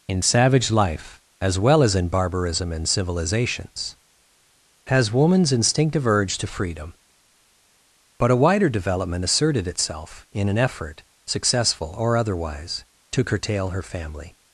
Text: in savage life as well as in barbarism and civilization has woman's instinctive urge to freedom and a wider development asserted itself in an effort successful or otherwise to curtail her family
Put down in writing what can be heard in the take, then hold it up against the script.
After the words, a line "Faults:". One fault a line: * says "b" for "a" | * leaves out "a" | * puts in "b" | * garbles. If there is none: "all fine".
in savage life as well as in barbarism and civilizations has woman's instinctive urge to freedom but a wider development asserted itself in an effort successful or otherwise to curtail her family
Faults:
* says "civilizations" for "civilization"
* says "but" for "and"